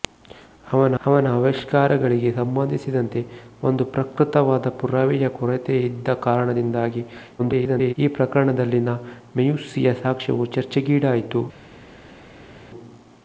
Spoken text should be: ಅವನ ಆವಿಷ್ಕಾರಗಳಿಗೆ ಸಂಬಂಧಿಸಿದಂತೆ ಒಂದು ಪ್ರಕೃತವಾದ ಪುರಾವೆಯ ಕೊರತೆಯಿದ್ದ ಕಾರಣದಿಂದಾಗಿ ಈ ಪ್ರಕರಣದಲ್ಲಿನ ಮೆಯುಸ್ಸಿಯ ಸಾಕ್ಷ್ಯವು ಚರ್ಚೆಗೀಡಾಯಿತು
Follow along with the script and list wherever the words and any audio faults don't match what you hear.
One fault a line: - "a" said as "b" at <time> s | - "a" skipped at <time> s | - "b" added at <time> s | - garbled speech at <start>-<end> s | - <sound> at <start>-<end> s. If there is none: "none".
- "ಅವನ" added at 1.0 s
- garbled speech at 7.4-7.9 s